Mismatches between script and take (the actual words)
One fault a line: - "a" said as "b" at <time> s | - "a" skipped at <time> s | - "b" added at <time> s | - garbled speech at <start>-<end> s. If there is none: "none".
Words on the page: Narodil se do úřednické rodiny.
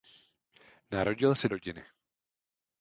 - "do úřednické" skipped at 1.5 s